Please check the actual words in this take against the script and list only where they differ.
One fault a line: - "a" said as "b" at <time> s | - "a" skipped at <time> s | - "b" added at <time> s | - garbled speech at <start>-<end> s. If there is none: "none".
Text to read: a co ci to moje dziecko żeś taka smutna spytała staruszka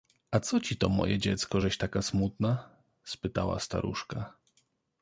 none